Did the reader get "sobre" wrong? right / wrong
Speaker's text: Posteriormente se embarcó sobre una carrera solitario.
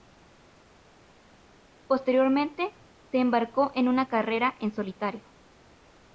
wrong